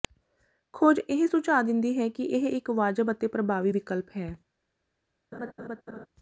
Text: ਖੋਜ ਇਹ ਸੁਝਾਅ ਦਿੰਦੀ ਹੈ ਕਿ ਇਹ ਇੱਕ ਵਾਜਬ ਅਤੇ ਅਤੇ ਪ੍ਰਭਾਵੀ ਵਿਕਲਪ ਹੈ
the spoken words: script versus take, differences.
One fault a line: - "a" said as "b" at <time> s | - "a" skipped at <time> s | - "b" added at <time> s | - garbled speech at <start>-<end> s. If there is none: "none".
- "ਅਤੇ" skipped at 3.3 s